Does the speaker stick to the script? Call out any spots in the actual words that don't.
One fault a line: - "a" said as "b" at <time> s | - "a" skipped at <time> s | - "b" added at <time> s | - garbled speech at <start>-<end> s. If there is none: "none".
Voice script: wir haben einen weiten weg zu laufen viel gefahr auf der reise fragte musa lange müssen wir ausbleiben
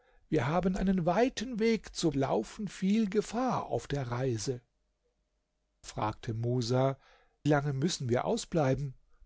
none